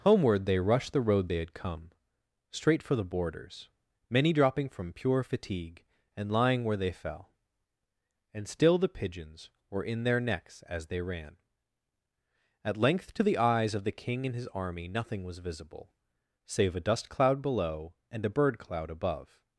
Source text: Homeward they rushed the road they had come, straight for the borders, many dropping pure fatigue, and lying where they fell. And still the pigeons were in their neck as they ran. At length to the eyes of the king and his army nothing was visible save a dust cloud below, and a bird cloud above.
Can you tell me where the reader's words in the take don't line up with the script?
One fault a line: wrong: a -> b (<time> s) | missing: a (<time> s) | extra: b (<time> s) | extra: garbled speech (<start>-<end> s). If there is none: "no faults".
extra: from (4.7 s)
wrong: neck -> necks (10.2 s)